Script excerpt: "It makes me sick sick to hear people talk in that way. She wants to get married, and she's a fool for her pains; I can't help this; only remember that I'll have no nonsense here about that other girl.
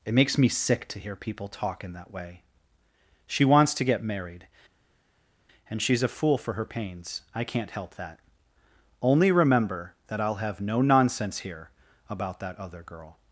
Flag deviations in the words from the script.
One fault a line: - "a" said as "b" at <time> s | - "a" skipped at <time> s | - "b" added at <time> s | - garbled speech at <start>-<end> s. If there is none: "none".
- "sick" skipped at 0.9 s
- "this" said as "that" at 7.9 s